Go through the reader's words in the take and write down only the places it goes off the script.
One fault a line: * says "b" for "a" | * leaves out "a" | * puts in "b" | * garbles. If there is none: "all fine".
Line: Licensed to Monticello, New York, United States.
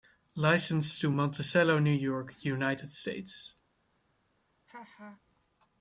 all fine